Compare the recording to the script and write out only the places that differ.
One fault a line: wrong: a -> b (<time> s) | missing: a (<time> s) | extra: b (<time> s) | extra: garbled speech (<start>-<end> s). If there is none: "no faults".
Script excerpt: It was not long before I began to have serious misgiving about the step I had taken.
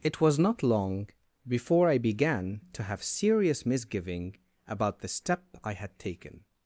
no faults